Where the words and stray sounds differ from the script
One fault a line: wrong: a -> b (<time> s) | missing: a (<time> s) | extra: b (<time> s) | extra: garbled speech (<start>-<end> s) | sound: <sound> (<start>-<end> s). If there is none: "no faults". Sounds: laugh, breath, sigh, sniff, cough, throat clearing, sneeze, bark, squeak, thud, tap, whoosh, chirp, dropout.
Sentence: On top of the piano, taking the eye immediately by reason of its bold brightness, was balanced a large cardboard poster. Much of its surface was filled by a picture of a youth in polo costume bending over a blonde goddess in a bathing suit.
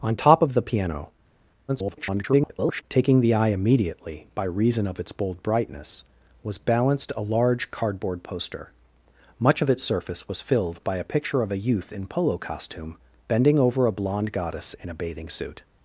extra: garbled speech (1.7-2.8 s)